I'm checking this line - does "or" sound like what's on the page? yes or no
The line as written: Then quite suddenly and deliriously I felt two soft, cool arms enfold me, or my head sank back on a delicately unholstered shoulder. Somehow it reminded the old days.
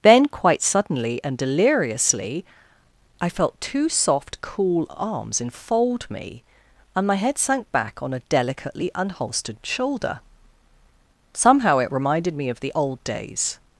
no